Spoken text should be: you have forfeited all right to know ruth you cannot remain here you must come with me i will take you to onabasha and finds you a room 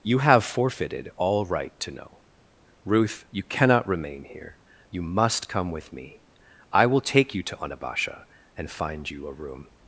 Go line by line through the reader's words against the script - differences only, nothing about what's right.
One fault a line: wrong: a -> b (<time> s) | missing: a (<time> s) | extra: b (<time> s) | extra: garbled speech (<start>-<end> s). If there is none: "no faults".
wrong: finds -> find (8.7 s)